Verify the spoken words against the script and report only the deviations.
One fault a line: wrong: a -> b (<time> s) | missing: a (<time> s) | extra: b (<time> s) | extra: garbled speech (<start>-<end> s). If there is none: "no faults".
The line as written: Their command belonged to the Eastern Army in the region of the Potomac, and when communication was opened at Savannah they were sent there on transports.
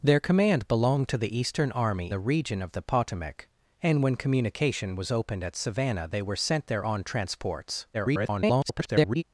missing: in (2.1 s)
extra: garbled speech (7.9-9.2 s)